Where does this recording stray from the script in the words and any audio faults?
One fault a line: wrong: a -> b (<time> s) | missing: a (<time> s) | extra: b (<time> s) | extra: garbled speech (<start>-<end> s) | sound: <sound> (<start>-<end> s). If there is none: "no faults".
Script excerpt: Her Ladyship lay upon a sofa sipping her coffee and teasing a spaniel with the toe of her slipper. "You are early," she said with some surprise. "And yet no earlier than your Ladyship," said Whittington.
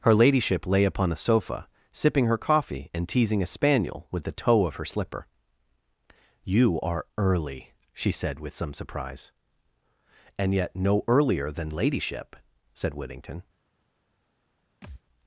missing: your (11.7 s)
sound: thud (14.8-15.0 s)